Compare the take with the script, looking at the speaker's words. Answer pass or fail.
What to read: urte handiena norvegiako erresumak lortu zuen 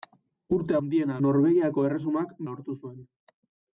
pass